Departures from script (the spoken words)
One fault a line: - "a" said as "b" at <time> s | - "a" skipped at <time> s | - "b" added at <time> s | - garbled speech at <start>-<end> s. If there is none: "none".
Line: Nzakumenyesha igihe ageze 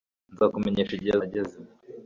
none